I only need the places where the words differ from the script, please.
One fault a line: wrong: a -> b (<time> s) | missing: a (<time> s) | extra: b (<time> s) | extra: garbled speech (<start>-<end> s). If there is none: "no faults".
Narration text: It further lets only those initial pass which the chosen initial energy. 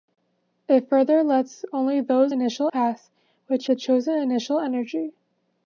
no faults